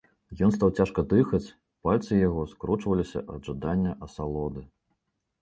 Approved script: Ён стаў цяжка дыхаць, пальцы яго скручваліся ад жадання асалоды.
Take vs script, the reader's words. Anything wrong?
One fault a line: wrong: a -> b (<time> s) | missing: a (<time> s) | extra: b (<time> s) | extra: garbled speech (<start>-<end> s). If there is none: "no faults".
no faults